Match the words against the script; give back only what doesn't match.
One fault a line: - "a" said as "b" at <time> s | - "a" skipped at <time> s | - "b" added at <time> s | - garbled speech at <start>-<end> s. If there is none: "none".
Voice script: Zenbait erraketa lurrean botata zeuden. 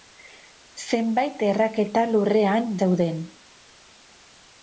- "botata" skipped at 2.8 s